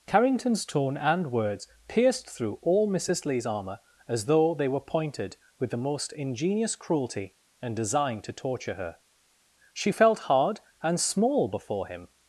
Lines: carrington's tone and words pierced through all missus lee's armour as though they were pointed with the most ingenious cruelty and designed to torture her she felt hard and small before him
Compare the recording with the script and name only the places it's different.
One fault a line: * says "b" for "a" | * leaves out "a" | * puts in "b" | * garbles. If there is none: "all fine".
all fine